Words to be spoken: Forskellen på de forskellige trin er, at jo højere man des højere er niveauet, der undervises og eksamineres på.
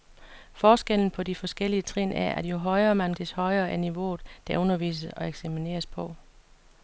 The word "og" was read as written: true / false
true